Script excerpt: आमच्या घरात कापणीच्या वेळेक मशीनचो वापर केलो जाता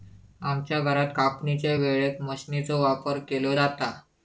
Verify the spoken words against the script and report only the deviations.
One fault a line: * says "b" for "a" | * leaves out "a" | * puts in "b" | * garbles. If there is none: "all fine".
all fine